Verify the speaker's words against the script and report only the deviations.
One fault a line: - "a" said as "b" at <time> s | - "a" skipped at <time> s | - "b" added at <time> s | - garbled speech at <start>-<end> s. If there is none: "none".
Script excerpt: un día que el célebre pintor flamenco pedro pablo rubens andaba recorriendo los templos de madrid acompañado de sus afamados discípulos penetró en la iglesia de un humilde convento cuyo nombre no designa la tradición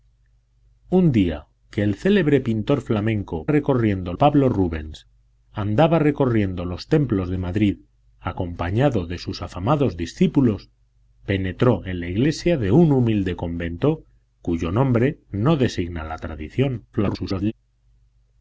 - "pedro" said as "recorriendo" at 3.5 s
- garbled speech at 16.9-17.5 s